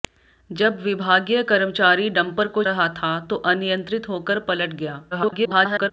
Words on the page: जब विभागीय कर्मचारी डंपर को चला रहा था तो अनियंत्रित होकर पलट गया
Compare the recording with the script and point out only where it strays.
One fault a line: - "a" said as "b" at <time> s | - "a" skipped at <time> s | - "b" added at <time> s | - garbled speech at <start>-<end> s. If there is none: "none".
- "चला" skipped at 2.6 s
- garbled speech at 5.1-5.9 s